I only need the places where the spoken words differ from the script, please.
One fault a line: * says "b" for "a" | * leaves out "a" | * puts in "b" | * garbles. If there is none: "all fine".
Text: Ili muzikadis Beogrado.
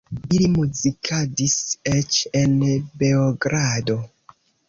* puts in "eĉ en"